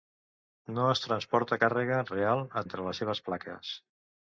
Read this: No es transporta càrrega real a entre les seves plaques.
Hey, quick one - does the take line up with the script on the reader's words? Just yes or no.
yes